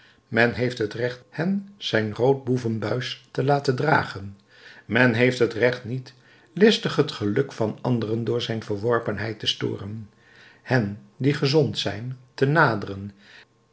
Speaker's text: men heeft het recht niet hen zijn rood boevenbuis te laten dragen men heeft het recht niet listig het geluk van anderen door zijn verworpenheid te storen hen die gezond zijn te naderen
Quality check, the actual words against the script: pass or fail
fail